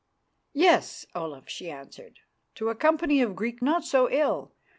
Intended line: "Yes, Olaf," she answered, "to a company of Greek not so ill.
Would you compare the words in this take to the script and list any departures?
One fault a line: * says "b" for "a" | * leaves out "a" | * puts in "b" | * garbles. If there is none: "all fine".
all fine